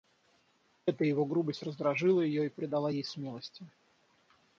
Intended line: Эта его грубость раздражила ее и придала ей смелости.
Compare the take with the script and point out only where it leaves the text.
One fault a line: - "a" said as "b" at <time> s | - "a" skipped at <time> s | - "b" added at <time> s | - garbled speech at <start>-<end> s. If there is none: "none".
none